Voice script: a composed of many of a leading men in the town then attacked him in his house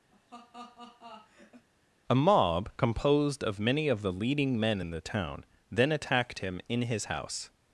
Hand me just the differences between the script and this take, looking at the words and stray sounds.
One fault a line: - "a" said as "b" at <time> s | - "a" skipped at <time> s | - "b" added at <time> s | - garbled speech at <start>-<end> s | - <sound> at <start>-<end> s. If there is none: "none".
- laugh at 0.1-1.7 s
- "mob" added at 2.1 s
- "a" said as "the" at 4.0 s